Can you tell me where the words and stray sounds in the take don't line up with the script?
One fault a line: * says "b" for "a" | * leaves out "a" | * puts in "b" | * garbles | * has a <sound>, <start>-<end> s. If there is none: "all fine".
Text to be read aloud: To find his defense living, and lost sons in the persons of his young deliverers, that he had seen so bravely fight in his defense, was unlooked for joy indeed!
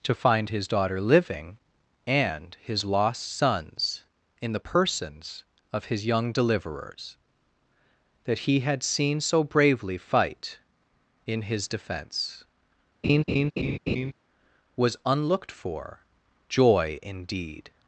* says "daughter" for "defense"
* puts in "his"
* has a laugh, 13.0-14.1 s